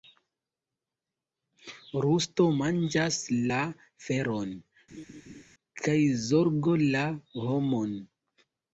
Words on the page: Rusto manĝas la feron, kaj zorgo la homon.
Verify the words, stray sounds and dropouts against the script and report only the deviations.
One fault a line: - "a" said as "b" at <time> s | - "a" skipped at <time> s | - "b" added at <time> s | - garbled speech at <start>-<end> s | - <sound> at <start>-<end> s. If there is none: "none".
- laugh at 4.9-5.4 s